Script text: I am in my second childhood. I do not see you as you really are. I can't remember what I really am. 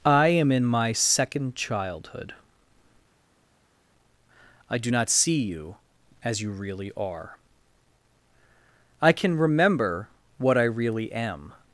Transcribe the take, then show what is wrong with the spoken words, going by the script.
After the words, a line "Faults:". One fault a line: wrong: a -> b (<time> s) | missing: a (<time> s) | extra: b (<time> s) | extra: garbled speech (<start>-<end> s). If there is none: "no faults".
I am in my second childhood. I do not see you as you really are. I can remember what I really am.
Faults:
wrong: can't -> can (9.1 s)